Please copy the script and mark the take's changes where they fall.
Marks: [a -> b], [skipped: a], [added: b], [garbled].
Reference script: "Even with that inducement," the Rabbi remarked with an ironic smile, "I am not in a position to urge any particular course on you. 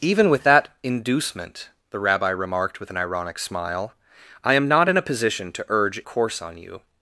"Even with that inducement," the Rabbi remarked with an ironic smile, "I am not in a position to urge [skipped: any particular] course on you.